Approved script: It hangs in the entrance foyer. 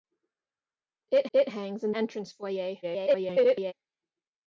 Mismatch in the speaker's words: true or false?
true